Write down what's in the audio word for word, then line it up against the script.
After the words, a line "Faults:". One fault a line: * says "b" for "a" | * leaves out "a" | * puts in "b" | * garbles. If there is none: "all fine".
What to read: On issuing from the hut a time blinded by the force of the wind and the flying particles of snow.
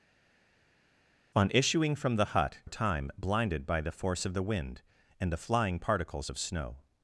On issuing from the hut a time blinded by the force of the wind and the flying particles of snow.
Faults:
all fine